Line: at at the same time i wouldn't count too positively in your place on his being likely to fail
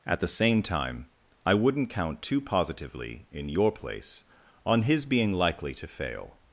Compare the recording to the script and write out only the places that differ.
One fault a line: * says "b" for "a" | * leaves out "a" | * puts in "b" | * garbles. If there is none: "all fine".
* leaves out "at"